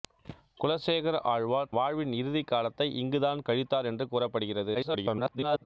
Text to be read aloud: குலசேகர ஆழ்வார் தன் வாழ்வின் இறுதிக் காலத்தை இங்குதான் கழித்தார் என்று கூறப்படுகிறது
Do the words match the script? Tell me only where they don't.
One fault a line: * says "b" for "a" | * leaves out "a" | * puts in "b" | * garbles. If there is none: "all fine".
* leaves out "தன்"
* garbles